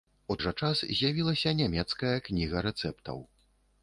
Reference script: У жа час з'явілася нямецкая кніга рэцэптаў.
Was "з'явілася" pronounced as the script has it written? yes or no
yes